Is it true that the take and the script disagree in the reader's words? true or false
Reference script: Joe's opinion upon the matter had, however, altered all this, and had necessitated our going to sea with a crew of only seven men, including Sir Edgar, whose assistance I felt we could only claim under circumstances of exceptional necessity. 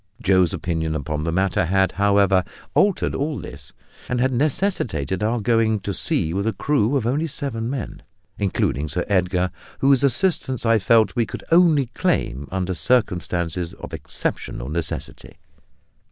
false